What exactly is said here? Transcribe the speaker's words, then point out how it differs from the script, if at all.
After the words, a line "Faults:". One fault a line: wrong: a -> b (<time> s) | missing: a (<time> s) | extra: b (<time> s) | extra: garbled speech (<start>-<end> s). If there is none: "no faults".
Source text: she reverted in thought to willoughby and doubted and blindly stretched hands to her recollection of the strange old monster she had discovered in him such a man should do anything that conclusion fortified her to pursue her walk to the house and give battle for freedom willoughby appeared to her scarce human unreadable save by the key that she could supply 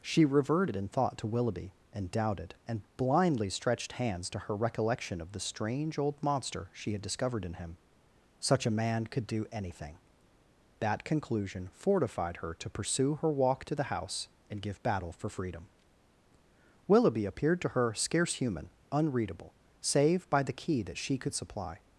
she reverted in thought to willoughby and doubted and blindly stretched hands to her recollection of the strange old monster she had discovered in him such a man could do anything that conclusion fortified her to pursue her walk to the house and give battle for freedom willoughby appeared to her scarce human unreadable save by the key that she could supply
Faults:
wrong: should -> could (9.1 s)